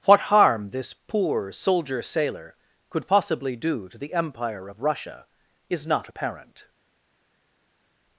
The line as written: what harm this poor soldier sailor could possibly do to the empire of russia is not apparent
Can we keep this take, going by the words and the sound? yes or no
yes